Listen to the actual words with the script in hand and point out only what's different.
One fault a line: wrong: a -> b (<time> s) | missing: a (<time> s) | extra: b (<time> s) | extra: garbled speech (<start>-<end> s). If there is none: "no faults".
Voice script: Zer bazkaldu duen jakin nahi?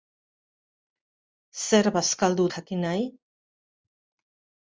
missing: duen (2.5 s)